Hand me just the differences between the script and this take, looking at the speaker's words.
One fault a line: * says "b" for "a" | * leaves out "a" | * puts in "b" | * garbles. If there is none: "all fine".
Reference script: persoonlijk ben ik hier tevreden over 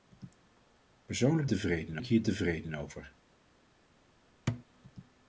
* says "tevreden" for "ben"